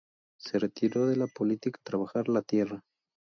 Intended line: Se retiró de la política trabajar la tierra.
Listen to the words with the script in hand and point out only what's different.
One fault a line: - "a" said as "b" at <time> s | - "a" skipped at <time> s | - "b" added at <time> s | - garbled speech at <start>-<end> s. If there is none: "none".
none